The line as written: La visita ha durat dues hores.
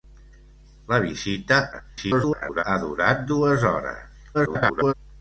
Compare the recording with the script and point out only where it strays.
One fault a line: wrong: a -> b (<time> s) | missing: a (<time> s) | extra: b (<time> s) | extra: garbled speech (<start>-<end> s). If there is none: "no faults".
extra: garbled speech (1.7-2.6 s)
extra: garbled speech (4.3-4.9 s)